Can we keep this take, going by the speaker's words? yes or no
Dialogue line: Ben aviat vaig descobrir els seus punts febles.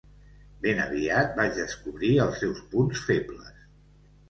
yes